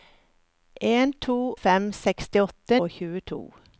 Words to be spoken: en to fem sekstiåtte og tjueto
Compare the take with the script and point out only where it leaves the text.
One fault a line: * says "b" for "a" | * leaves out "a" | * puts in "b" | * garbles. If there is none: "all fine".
all fine